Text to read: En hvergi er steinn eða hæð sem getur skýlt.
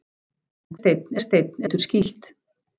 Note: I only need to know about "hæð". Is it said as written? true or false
false